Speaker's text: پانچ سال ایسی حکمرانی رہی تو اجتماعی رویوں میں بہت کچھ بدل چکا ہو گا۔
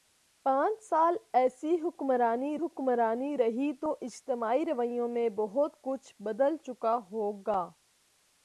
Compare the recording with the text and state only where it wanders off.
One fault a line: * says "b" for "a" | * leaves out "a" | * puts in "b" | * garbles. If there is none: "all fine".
* puts in "حکمرانی"